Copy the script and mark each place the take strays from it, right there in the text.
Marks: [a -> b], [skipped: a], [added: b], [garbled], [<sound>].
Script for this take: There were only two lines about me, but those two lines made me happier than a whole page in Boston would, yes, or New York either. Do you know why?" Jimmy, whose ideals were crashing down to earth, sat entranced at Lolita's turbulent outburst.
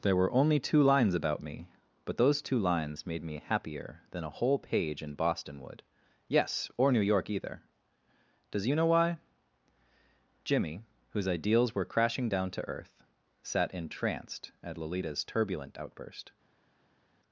There were only two lines about me, but those two lines made me happier than a whole page in Boston would, yes, or New York either. [Do -> Does] you know why?" Jimmy, whose ideals were crashing down to earth, sat entranced at Lolita's turbulent outburst.